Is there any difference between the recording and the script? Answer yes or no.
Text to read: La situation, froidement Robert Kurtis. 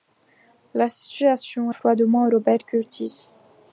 no